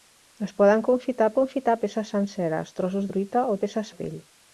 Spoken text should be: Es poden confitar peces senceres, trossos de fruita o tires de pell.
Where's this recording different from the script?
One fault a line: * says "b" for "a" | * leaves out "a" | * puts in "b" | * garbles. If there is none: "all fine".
* puts in "confitar"
* leaves out "de"
* says "peces" for "tires"